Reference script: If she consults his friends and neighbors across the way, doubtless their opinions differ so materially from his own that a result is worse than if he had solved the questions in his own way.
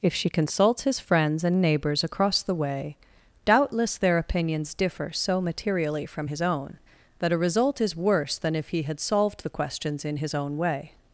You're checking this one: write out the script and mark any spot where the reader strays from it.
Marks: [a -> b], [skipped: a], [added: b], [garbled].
If she consults his friends and neighbors across the way, doubtless their opinions differ so materially from his own that a result is worse than if he had solved the questions in his own way.